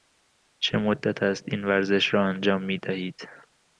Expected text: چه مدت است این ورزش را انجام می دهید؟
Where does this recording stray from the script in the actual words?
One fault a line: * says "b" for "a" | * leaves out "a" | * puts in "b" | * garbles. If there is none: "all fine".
all fine